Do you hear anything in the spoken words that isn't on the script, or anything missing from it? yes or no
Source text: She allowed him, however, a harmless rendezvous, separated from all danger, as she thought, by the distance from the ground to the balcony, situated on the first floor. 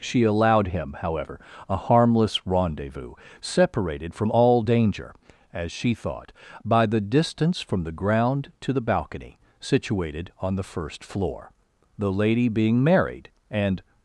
yes